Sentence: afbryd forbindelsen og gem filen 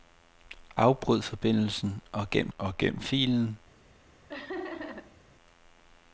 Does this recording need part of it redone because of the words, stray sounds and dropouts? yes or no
yes